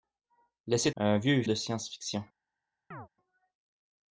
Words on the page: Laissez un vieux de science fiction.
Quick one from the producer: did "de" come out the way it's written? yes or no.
yes